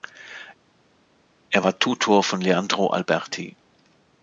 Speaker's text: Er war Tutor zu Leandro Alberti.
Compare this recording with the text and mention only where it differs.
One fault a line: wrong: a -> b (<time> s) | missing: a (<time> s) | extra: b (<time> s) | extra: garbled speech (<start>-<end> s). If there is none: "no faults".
wrong: zu -> von (2.2 s)